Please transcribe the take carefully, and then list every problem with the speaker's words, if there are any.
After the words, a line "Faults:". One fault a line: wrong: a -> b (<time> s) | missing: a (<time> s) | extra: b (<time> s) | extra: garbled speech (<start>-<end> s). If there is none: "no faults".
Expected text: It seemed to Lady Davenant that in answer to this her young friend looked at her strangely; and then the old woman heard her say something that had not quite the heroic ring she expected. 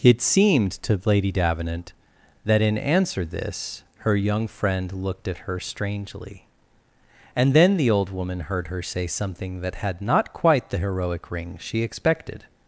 It seemed to Lady Davenant that in answer this her young friend looked at her strangely; and then the old woman heard her say something that had not quite the heroic ring she expected.
Faults:
missing: to (3.2 s)